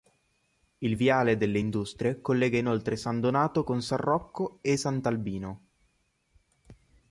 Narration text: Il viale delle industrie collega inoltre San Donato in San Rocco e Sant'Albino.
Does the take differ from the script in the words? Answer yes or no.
yes